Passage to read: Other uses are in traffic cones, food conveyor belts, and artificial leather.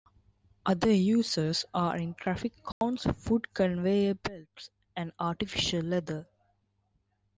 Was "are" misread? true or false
false